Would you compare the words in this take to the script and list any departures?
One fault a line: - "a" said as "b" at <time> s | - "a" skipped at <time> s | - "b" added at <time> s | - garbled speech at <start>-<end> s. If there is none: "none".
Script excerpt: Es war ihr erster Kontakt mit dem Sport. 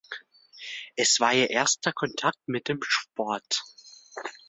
none